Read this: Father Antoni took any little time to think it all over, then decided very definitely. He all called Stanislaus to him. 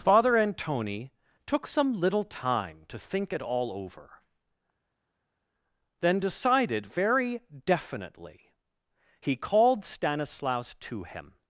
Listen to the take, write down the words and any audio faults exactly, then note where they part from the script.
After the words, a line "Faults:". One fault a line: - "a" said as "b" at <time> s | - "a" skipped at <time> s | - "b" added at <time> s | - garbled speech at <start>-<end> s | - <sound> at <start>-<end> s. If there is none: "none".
Father Antoni took some little time to think it all over, then decided very definitely. He called Stanislaus to him.
Faults:
- "any" said as "some" at 1.7 s
- "all" skipped at 9.3 s